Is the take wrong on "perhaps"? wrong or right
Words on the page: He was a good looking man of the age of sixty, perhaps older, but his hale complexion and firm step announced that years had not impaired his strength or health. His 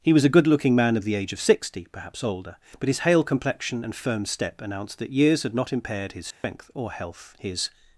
right